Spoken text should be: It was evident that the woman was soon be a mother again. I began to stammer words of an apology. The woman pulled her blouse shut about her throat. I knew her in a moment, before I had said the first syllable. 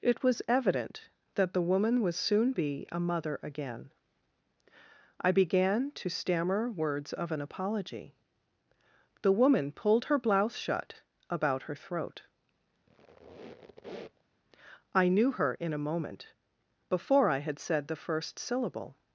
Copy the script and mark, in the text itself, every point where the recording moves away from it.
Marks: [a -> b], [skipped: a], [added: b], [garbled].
It was evident that the woman was soon be a mother again. I began to stammer words of an apology. The woman pulled her blouse shut about her throat. I knew her in a moment, before I had said the first syllable.